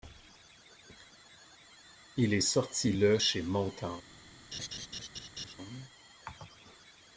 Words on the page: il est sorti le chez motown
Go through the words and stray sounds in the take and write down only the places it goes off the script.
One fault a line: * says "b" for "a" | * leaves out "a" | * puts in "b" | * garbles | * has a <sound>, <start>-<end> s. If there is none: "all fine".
* has a laugh, 4.5-5.5 s